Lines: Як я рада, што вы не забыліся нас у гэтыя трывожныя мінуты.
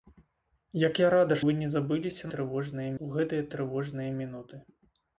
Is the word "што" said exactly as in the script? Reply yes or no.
no